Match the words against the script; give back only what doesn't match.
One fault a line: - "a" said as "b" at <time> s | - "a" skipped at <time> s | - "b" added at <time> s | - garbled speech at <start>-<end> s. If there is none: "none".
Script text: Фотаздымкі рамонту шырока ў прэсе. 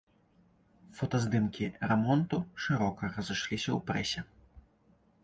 - "разышліся" added at 3.2 s